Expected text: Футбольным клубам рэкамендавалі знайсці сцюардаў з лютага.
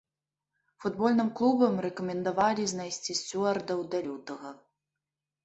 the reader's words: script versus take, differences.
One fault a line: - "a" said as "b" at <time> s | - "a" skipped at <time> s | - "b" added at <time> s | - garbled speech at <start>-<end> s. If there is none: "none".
- "з" said as "да" at 3.9 s